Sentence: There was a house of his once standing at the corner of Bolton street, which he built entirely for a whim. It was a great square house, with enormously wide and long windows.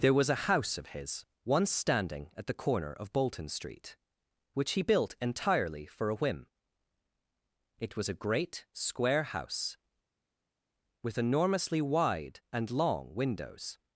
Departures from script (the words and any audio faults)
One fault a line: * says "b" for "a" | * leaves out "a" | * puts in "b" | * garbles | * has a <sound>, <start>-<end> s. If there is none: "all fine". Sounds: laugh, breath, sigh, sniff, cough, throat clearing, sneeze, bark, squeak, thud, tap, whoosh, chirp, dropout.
all fine